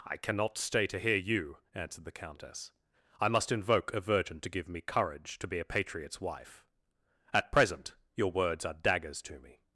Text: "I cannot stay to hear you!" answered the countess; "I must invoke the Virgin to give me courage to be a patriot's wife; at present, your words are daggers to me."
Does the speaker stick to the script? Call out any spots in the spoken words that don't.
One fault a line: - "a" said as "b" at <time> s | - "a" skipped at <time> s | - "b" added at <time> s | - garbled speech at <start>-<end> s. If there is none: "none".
- "the" said as "a" at 3.9 s